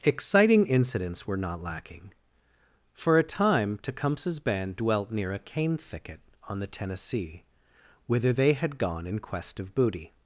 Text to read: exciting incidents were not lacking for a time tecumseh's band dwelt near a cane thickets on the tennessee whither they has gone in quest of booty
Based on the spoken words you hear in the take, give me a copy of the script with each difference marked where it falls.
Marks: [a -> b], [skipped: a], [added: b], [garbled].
exciting incidents were not lacking for a time tecumseh's band dwelt near a cane [thickets -> thicket] on the tennessee whither they [has -> had] gone in quest of booty